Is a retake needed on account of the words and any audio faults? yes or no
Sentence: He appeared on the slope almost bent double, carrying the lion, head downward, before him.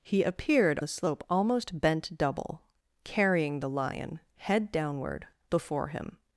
yes